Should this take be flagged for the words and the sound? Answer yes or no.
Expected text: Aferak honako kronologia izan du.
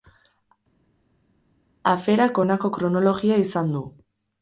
no